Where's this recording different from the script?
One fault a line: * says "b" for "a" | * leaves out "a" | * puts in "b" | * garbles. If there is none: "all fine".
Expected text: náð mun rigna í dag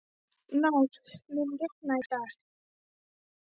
all fine